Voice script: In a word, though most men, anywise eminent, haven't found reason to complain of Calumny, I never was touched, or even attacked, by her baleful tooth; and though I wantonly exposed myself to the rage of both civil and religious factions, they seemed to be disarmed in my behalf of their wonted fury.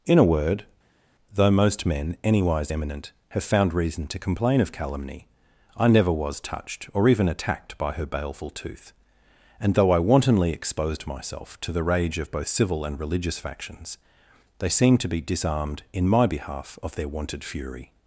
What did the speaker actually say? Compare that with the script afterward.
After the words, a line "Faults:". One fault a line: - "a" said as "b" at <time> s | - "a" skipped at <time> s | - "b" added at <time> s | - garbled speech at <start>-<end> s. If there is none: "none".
In a word, though most men, anywise eminent, have found reason to complain of Calumny, I never was touched, or even attacked, by her baleful tooth; and though I wantonly exposed myself to the rage of both civil and religious factions, they seemed to be disarmed in my behalf of their wonted fury.
Faults:
- "haven't" said as "have" at 3.3 s